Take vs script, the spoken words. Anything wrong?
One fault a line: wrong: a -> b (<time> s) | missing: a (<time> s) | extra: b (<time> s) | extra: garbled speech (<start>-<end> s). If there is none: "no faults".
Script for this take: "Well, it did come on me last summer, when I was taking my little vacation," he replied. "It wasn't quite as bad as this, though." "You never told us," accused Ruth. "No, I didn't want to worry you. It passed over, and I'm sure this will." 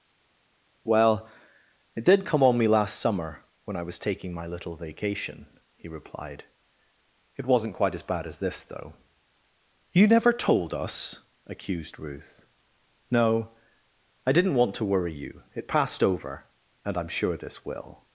no faults